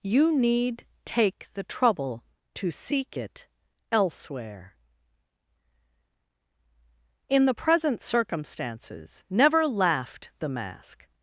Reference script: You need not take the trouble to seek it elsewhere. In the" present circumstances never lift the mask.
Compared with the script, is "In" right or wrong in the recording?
right